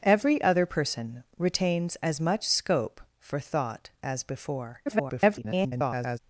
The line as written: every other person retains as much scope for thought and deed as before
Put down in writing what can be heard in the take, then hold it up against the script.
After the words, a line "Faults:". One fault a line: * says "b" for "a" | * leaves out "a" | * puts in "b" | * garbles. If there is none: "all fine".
every other person retains as much scope for thought as before [garbled]
Faults:
* leaves out "and deed"
* garbles